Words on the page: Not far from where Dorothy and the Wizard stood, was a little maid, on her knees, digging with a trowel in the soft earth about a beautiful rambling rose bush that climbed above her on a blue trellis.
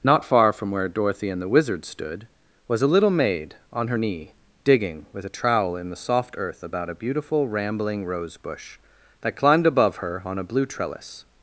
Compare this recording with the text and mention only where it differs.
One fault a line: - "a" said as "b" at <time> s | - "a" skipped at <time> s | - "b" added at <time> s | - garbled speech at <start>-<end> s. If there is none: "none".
- "knees" said as "knee" at 3.9 s